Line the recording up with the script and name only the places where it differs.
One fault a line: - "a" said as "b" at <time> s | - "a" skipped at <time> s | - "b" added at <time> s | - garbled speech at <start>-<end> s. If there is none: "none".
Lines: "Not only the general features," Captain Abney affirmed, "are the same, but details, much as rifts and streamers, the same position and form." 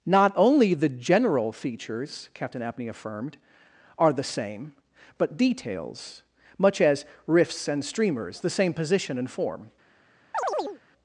none